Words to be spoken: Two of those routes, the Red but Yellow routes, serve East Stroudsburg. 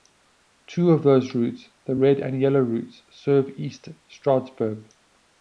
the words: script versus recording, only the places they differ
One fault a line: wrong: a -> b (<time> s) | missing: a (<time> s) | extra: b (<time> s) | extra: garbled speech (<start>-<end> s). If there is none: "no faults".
wrong: but -> and (2.2 s)